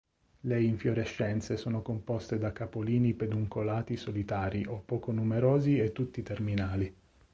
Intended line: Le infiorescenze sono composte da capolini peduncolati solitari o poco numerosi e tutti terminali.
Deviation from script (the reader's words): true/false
false